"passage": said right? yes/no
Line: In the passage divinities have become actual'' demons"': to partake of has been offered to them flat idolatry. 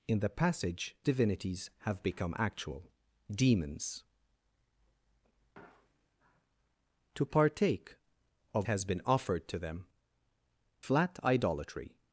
yes